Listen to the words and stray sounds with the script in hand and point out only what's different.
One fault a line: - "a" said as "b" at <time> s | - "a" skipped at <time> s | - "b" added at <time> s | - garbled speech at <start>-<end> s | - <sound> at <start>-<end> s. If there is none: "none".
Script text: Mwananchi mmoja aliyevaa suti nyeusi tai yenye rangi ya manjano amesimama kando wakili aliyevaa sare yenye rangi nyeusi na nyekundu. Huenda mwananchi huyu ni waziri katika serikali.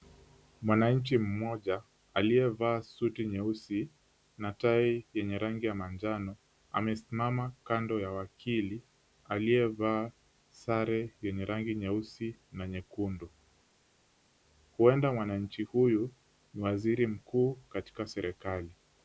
- "na" added at 4.4 s
- "ya" added at 8.0 s
- "mkuu" added at 17.1 s